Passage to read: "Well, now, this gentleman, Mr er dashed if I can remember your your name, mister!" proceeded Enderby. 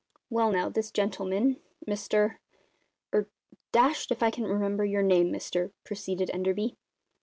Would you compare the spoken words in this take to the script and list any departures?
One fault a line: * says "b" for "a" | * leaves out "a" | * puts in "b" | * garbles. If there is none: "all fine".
* leaves out "your"